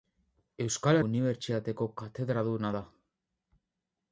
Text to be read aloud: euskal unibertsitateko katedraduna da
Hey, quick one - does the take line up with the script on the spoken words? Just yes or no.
yes